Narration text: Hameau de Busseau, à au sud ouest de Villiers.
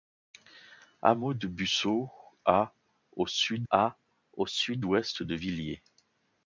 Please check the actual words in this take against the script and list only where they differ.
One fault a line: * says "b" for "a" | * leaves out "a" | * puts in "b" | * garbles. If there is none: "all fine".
* puts in "à au sud"